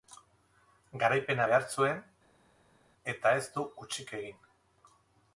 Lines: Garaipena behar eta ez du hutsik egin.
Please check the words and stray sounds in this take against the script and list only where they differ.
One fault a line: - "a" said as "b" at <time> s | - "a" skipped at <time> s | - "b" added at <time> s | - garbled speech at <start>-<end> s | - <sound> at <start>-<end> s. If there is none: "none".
- "zuen" added at 1.8 s